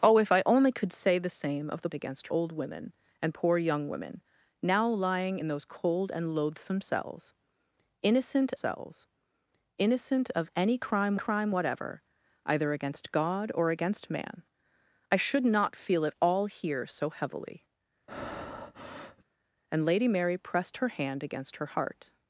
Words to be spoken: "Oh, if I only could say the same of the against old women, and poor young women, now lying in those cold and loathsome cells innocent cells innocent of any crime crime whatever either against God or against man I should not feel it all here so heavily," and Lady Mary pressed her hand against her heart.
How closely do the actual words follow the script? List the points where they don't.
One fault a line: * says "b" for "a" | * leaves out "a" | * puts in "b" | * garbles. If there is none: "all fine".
all fine